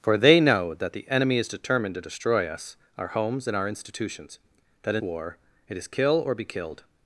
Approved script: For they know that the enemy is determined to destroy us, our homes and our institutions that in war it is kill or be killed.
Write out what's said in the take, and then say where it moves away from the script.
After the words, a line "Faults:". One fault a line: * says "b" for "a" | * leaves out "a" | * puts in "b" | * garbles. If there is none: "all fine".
For they know that the enemy is determined to destroy us, our homes and our institutions that in war it is kill or be killed.
Faults:
all fine